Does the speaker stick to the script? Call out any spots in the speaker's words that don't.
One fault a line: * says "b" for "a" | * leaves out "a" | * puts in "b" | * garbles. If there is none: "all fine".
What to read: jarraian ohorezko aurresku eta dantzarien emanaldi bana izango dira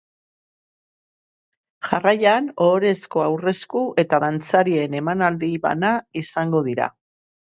all fine